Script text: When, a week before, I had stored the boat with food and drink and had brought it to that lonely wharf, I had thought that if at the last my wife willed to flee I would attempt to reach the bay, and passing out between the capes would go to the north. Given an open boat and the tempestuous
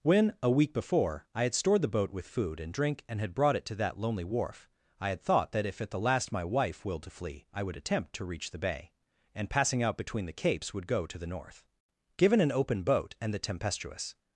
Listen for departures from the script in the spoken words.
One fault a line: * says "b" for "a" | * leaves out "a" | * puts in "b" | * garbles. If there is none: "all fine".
all fine